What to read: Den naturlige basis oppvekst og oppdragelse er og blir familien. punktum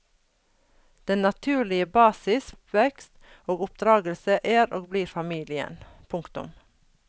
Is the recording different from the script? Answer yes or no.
no